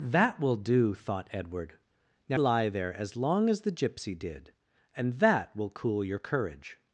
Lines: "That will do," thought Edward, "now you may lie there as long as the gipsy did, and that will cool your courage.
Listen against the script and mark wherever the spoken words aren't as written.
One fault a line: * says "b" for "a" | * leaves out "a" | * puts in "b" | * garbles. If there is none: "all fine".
* leaves out "you may"